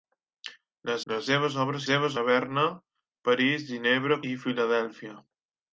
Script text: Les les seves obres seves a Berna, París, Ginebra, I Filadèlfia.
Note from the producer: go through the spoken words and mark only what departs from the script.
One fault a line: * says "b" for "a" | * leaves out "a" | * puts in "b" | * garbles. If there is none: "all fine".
all fine